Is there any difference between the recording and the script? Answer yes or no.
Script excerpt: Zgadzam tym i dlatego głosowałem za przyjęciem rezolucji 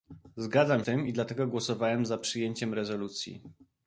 no